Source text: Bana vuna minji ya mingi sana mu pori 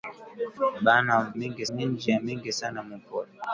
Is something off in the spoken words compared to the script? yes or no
yes